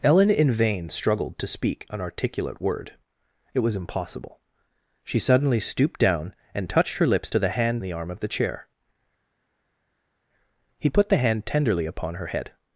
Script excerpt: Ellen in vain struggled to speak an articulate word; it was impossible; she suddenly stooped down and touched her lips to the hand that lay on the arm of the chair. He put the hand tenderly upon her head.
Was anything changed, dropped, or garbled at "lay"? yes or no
yes